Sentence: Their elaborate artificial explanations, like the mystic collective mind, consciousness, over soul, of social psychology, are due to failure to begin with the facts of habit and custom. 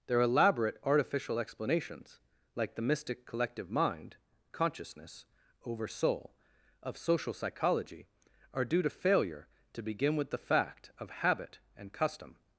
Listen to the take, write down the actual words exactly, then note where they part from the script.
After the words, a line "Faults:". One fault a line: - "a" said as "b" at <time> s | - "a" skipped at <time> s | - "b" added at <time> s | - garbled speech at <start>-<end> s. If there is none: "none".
Their elaborate artificial explanations, like the mystic collective mind, consciousness, over soul, of social psychology, are due to failure to begin with the fact of habit and custom.
Faults:
- "facts" said as "fact" at 10.4 s